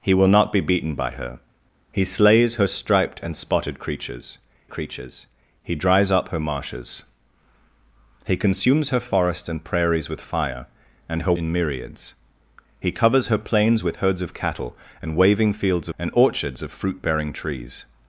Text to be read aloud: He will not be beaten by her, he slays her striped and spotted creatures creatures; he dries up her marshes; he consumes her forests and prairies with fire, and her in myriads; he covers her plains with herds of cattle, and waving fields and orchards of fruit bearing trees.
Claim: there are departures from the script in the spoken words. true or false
false